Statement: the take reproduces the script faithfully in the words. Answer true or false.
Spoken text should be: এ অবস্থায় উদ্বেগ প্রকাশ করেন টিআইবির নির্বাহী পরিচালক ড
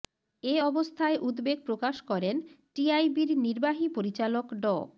true